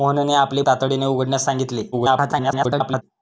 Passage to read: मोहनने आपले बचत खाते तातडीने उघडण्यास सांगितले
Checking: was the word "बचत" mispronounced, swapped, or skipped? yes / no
yes